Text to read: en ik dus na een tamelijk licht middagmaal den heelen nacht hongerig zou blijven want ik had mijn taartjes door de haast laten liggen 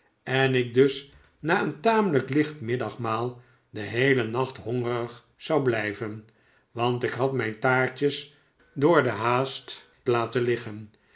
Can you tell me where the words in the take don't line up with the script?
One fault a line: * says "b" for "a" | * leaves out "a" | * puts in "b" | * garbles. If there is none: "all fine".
all fine